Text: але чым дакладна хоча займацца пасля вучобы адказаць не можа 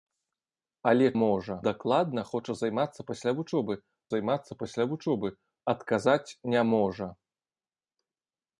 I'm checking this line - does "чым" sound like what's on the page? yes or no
no